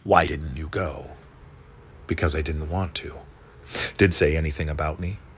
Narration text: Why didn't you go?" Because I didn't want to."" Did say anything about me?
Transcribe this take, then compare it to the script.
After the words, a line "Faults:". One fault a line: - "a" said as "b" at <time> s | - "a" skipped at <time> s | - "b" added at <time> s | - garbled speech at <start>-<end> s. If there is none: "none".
Why didn't you go?" Because I didn't want to."" Did say anything about me?
Faults:
none